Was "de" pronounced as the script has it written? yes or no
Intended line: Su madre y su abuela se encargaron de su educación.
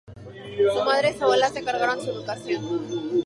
no